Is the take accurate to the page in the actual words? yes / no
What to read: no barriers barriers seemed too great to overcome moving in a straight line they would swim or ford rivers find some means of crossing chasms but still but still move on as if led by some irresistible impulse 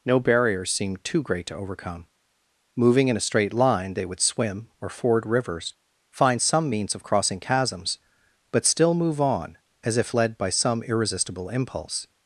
no